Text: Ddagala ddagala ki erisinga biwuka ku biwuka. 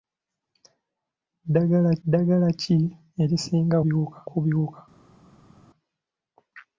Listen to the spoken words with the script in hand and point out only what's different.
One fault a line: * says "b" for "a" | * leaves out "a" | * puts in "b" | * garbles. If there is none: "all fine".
all fine